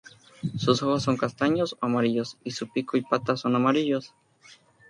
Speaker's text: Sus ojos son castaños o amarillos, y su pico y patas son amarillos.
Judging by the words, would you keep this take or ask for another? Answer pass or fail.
pass